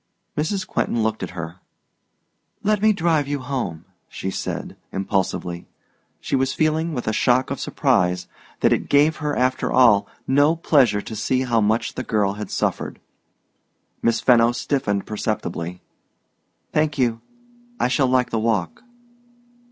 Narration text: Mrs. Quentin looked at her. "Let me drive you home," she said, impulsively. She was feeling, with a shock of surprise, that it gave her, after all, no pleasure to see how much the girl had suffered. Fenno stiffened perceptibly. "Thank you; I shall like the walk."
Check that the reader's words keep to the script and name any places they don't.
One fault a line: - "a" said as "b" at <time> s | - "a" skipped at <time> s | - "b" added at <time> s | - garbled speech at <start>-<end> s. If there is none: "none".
- "Miss" added at 14.0 s